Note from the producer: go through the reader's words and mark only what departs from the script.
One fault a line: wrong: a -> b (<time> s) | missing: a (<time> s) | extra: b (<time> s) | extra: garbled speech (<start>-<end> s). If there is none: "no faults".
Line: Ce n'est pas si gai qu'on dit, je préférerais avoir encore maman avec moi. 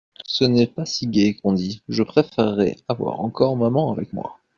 no faults